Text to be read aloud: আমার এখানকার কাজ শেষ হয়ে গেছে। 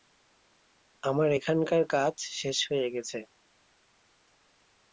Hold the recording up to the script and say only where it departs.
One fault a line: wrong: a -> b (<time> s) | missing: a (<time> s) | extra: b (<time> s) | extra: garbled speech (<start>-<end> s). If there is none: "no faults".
no faults